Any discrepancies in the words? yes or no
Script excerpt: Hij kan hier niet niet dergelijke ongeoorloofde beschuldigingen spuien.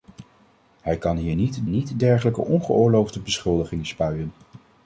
no